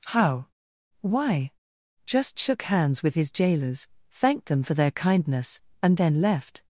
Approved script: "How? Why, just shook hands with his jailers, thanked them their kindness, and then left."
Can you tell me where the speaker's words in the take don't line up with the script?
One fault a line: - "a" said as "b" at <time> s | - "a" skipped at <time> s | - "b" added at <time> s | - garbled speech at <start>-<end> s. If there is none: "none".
- "for" added at 4.6 s